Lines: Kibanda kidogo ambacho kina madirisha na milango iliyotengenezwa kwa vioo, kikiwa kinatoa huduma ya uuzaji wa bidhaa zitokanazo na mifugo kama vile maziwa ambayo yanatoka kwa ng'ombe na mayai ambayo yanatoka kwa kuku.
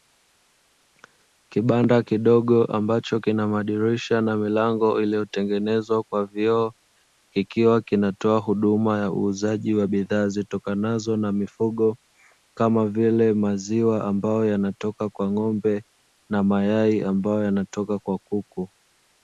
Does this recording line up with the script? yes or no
yes